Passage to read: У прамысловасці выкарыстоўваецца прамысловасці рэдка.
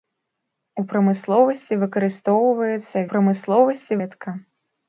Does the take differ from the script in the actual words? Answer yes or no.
no